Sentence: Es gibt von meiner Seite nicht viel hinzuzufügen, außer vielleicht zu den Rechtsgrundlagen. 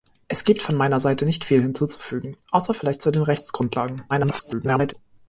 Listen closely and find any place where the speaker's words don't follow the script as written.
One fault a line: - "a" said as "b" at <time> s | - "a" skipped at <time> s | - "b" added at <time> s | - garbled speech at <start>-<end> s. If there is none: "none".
- garbled speech at 4.1-4.9 s